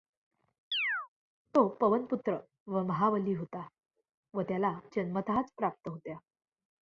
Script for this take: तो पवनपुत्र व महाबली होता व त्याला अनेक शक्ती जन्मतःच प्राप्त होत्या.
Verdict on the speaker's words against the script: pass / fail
fail